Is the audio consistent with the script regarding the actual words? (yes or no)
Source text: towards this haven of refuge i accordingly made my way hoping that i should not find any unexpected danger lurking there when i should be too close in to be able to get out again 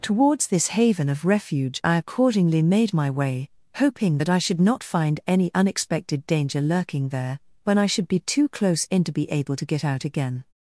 yes